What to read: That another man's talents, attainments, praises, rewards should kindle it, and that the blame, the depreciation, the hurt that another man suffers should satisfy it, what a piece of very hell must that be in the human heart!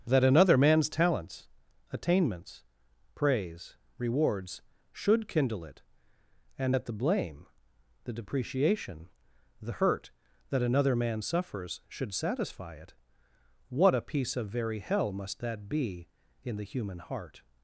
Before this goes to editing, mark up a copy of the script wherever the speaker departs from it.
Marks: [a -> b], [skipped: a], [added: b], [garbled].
That another man's talents, attainments, [praises, -> praise] rewards should kindle it, and that the blame, the depreciation, the hurt that another man suffers should satisfy it, what a piece of very hell must that be in the human heart!